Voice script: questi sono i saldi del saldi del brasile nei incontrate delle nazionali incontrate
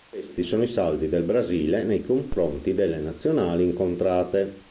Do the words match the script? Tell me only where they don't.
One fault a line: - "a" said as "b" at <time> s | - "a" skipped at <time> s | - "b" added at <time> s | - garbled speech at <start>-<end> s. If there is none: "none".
- "saldi del" skipped at 1.2 s
- "incontrate" said as "confronti" at 2.0 s